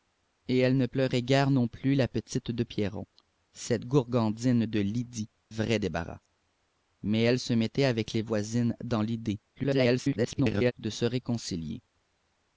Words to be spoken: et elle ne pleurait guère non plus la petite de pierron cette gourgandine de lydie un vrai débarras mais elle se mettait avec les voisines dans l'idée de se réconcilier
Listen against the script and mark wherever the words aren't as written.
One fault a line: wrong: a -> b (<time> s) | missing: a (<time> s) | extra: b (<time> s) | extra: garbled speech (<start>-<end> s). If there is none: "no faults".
missing: un (5.3 s)
extra: garbled speech (9.5-10.7 s)